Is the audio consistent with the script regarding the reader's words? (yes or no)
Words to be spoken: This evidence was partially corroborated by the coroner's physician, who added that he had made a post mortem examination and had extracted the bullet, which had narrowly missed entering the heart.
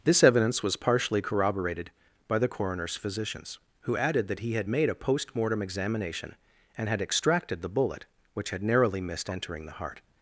no